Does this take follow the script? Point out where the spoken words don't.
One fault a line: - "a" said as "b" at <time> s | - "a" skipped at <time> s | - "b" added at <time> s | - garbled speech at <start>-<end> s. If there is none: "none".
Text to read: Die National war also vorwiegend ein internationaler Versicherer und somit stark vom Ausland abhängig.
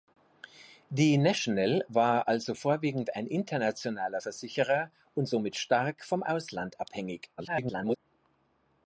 - garbled speech at 7.4-8.0 s